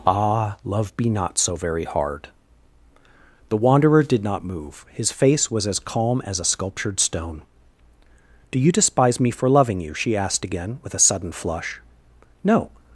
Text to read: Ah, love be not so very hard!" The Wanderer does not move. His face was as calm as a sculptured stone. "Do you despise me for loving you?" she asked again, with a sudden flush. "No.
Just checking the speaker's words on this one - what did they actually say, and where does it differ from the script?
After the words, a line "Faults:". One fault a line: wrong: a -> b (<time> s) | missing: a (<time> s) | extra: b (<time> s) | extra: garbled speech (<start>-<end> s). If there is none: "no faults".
Ah, love be not so very hard!" The Wanderer did not move. His face was as calm as a sculptured stone. "Do you despise me for loving you?" she asked again, with a sudden flush. "No.
Faults:
wrong: does -> did (4.0 s)